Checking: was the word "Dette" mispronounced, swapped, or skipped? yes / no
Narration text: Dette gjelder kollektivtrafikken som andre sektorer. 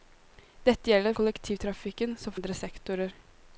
no